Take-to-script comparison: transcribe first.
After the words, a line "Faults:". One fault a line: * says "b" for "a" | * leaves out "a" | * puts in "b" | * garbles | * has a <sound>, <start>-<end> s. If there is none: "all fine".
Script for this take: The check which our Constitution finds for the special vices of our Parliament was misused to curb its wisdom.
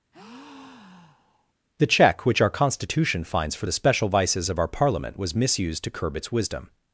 The check which our Constitution finds for the special vices of our Parliament was misused to curb its wisdom.
Faults:
* has a breath, 0.1-1.5 s